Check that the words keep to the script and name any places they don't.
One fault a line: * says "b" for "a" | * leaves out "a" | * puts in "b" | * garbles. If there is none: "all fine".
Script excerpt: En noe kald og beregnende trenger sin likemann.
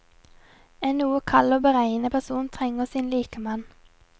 * puts in "person"